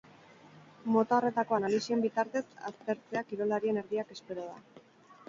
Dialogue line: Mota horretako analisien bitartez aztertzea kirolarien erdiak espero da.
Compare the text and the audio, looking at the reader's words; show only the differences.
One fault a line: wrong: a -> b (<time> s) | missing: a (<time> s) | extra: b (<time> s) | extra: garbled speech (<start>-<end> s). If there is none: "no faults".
no faults